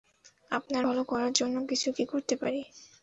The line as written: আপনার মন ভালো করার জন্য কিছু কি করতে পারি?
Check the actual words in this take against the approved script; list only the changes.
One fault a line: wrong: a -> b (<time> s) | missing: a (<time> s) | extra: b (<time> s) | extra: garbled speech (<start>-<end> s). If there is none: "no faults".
missing: মন (0.8 s)